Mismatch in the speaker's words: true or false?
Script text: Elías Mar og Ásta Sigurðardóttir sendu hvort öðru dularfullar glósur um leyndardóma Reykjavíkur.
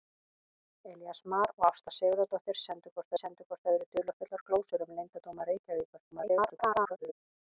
true